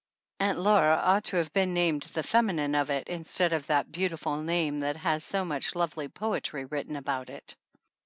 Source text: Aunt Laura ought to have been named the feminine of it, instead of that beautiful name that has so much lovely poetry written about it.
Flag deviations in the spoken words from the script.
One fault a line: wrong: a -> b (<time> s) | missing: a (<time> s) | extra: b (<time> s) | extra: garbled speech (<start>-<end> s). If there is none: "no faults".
no faults